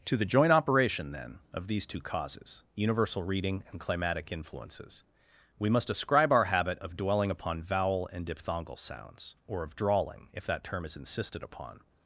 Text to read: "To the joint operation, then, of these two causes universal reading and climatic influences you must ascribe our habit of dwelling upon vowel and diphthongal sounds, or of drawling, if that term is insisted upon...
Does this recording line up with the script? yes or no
no